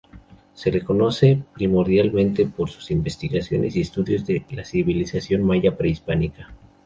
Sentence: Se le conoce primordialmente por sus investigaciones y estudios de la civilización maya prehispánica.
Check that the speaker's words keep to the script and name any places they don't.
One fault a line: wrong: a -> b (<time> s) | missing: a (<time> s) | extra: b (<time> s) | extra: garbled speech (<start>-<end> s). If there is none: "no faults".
no faults